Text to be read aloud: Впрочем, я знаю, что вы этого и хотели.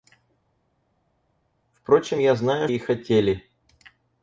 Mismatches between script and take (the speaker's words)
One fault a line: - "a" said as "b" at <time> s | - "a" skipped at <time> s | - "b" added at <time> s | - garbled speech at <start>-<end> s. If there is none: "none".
- "что вы этого" skipped at 2.7 s